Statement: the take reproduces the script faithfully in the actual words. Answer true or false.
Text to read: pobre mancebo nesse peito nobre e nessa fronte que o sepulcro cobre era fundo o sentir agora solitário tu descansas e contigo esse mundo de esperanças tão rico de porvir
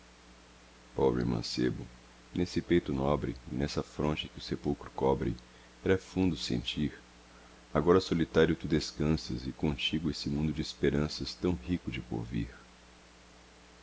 true